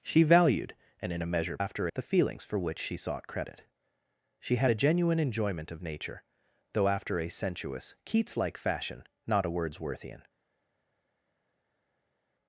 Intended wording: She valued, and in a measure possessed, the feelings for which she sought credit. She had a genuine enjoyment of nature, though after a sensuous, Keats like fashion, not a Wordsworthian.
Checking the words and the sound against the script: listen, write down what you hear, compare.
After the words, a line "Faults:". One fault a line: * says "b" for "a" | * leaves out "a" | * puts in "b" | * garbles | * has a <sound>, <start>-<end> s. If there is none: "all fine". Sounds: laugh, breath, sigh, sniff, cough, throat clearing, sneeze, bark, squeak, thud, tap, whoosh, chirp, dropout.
She valued, and in a measure after, the feelings for which she sought credit. She had a genuine enjoyment of nature, though after a sensuous, Keats like fashion, not a Wordsworthian.
Faults:
* says "after" for "possessed"